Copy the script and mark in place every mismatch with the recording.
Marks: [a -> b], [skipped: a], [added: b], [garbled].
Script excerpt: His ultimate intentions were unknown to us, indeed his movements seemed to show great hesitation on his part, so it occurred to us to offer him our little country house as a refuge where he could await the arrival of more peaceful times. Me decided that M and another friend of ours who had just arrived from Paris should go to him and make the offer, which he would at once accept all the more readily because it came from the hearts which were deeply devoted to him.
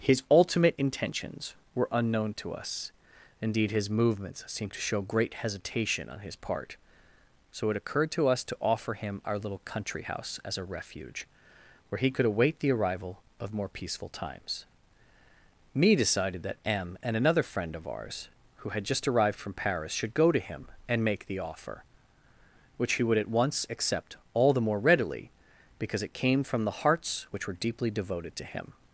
His ultimate intentions were unknown to us, indeed his movements seemed to show great hesitation on his part, so it occurred to us to offer him our little country house as a refuge where he could await the arrival of more peaceful times. Me decided that M and another friend of ours who had just arrived from Paris should go to him and make the offer, which he would at once accept all the more readily because it came from the hearts which were deeply devoted to him.